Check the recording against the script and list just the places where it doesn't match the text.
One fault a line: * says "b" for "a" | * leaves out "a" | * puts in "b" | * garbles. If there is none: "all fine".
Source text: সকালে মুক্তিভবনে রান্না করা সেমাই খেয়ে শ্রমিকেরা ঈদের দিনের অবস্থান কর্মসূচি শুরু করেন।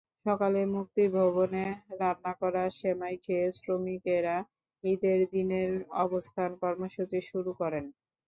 all fine